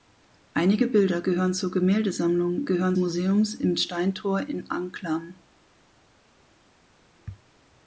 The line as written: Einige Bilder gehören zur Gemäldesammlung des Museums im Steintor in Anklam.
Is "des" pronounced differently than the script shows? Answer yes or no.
yes